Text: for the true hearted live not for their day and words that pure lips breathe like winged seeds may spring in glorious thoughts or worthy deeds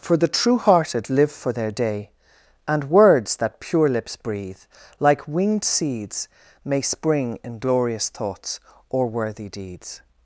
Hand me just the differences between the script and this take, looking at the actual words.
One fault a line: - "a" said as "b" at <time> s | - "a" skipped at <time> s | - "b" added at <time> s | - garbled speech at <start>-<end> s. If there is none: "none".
- "not" skipped at 1.3 s